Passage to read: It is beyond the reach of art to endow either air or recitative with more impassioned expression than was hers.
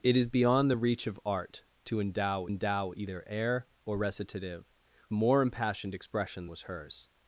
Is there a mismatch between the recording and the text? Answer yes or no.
yes